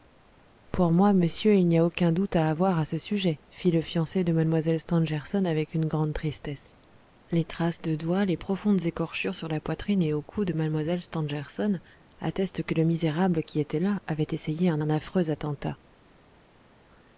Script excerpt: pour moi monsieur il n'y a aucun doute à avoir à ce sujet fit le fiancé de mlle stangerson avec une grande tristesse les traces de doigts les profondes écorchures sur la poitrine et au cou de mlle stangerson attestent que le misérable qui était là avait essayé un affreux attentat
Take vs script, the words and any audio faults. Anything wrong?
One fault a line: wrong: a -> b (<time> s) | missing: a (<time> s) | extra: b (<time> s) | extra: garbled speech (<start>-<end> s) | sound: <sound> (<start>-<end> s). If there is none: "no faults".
extra: un (14.8 s)